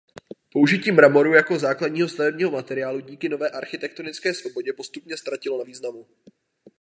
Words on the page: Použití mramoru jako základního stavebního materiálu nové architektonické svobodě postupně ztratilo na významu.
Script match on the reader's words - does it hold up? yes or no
no